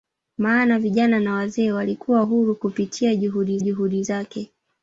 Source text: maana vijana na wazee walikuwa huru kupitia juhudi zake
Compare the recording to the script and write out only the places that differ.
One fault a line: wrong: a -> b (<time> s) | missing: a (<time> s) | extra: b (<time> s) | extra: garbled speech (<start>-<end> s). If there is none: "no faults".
extra: juhudi (3.6 s)